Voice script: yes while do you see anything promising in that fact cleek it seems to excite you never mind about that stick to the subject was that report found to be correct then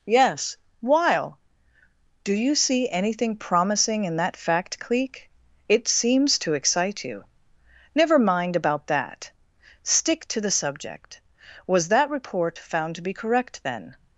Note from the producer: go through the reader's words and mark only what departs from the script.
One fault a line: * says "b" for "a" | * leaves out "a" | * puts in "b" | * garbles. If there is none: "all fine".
all fine